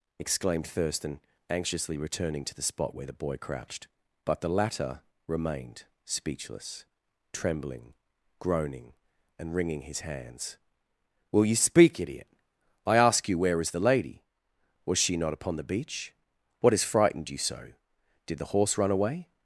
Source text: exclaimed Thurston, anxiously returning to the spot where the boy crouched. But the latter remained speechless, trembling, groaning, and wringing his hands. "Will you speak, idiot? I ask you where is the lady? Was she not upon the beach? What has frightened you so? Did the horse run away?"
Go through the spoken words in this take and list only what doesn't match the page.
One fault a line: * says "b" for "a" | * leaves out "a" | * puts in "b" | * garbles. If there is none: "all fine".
all fine